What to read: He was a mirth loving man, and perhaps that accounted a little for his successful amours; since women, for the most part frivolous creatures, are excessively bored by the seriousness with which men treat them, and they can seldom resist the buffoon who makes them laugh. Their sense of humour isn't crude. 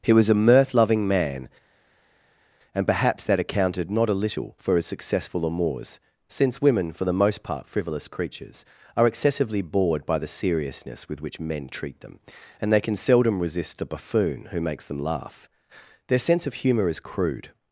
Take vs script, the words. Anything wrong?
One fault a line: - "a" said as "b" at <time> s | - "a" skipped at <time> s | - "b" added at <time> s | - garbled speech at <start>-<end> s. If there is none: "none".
- "not" added at 3.9 s
- "isn't" said as "is" at 16.9 s